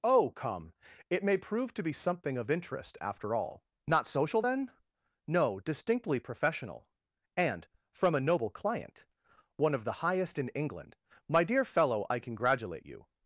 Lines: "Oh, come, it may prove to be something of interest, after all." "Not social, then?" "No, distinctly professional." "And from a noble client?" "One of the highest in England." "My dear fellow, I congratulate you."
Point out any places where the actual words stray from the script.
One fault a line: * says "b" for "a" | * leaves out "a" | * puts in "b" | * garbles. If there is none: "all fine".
all fine